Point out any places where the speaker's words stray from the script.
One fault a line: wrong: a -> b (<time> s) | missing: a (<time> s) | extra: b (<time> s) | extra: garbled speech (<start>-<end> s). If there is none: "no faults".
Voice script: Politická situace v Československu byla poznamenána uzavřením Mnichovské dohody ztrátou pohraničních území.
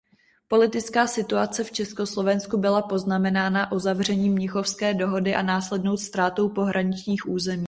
extra: a následnou (5.3 s)